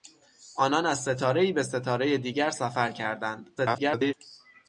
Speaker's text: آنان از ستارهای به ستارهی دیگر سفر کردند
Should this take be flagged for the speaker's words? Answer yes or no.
yes